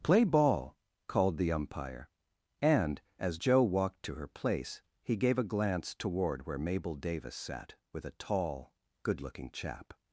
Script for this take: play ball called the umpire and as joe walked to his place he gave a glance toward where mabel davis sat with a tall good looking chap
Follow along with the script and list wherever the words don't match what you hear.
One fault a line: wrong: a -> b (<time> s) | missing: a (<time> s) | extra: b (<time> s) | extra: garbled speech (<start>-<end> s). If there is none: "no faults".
wrong: his -> her (4.1 s)